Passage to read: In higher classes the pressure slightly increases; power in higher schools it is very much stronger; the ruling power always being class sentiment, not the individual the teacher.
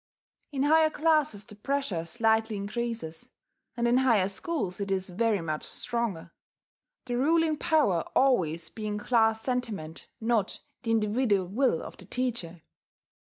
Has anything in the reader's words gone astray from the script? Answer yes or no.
yes